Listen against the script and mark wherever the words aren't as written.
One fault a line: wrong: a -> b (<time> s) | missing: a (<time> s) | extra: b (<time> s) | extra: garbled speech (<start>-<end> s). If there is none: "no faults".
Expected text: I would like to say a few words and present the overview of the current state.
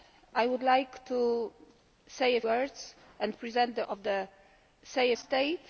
missing: few (2.4 s)
missing: overview (3.8 s)
wrong: current -> say (4.8 s)